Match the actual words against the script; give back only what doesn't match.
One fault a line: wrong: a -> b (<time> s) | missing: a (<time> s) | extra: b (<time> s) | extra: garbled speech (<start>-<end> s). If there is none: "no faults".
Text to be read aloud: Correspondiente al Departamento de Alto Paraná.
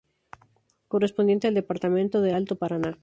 no faults